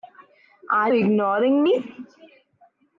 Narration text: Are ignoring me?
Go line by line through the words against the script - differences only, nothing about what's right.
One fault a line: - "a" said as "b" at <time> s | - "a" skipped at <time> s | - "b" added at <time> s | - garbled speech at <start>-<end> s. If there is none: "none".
none